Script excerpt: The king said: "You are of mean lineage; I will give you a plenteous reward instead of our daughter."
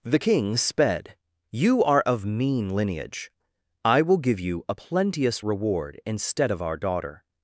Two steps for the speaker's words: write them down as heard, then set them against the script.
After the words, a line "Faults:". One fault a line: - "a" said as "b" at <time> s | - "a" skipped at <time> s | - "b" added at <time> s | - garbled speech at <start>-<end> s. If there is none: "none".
The king sped: "You are of mean lineage; I will give you a plenteous reward instead of our daughter."
Faults:
- "said" said as "sped" at 0.6 s